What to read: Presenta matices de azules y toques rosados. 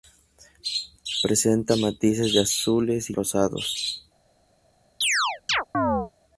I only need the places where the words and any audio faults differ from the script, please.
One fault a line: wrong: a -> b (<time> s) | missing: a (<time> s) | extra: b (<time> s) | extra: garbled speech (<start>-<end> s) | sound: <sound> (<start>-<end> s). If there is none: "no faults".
missing: toques (3.1 s)
sound: chirp (5.0-6.1 s)